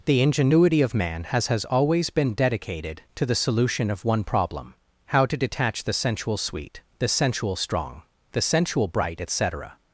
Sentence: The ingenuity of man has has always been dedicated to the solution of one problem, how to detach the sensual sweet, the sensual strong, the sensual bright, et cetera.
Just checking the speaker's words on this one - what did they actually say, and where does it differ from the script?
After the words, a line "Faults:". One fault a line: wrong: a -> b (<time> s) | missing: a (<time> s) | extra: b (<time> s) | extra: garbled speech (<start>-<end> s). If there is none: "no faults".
The ingenuity of man has has always been dedicated to the solution of one problem, how to detach the sensual sweet, the sensual strong, the sensual bright, et cetera.
Faults:
no faults